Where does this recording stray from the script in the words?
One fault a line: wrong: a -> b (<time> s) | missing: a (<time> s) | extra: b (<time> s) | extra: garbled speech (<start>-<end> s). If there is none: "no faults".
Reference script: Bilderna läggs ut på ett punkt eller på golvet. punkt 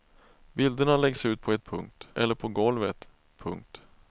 no faults